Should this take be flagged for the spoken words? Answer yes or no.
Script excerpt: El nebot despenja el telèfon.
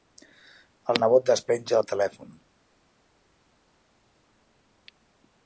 no